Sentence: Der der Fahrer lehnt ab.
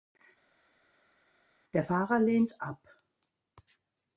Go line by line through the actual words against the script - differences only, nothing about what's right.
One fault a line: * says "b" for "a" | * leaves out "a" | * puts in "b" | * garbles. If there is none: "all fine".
* leaves out "der"